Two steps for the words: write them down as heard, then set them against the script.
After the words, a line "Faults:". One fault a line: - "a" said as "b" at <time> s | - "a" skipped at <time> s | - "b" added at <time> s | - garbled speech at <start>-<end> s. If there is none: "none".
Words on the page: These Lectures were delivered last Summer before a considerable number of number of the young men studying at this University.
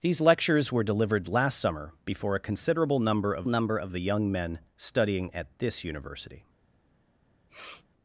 These Lectures were delivered last Summer before a considerable number of number of the young men studying at this University.
Faults:
none